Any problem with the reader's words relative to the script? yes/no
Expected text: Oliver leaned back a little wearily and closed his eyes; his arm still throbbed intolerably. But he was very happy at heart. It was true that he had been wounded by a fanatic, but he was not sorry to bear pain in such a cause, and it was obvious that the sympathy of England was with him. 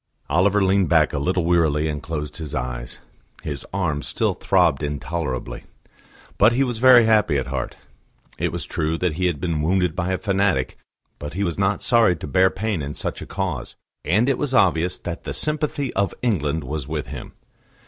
no